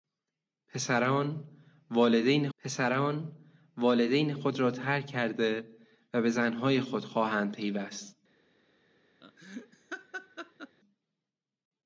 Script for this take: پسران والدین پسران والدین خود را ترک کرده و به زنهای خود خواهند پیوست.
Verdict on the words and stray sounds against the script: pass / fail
fail